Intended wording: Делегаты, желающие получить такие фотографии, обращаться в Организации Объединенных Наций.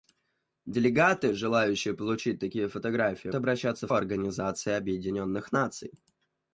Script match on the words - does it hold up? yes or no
yes